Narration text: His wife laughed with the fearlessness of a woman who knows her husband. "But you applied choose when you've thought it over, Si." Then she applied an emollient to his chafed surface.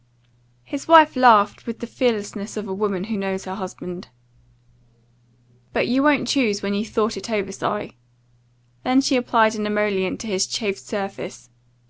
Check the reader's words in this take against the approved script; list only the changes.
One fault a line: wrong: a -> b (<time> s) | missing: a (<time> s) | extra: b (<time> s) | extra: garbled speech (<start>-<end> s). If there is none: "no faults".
wrong: applied -> won't (6.0 s)